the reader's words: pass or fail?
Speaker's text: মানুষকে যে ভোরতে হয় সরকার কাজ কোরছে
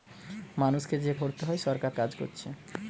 pass